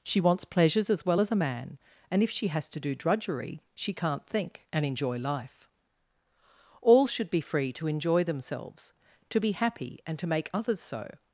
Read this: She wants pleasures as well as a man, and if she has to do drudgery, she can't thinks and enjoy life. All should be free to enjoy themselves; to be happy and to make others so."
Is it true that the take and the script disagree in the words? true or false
true